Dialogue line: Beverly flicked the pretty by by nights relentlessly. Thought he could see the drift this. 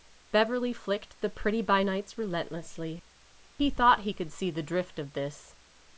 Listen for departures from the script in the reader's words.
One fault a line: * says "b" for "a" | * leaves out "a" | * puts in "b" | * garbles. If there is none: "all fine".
* leaves out "by"
* puts in "He"
* puts in "of"